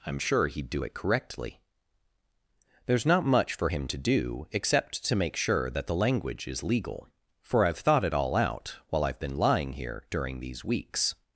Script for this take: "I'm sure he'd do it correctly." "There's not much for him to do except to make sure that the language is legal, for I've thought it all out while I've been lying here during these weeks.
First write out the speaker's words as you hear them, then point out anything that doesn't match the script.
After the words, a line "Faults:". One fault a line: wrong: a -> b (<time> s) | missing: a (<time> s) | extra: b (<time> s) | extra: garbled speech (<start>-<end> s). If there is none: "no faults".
"I'm sure he'd do it correctly." "There's not much for him to do except to make sure that the language is legal, for I've thought it all out while I've been lying here during these weeks.
Faults:
no faults